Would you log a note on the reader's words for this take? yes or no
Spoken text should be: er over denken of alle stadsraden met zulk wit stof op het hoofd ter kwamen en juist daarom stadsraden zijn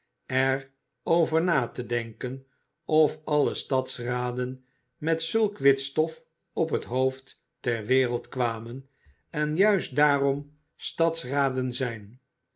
yes